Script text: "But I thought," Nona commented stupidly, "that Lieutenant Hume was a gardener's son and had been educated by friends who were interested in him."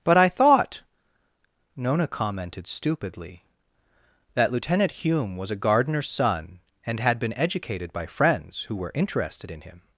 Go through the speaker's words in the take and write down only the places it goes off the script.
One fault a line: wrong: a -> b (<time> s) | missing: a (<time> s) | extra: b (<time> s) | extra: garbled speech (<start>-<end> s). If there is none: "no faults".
no faults